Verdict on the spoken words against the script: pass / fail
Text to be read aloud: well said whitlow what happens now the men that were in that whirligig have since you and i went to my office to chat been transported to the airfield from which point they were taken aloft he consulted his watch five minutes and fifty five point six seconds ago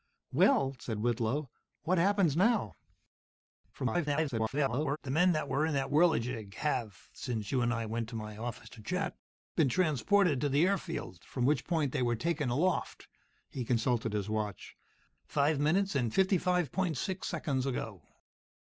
fail